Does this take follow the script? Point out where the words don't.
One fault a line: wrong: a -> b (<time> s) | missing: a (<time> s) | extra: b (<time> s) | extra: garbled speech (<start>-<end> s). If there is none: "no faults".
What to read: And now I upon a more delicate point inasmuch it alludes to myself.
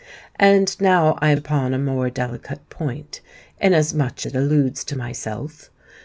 no faults